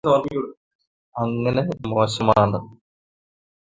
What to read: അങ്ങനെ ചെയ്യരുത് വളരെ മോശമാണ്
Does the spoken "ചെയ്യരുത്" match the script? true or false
false